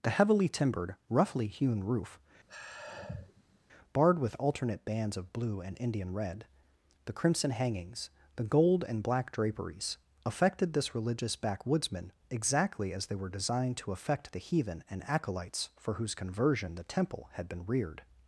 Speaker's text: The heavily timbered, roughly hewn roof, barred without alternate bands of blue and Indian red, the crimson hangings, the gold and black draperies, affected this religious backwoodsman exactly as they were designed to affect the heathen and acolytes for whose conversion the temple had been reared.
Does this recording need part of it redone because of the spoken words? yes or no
yes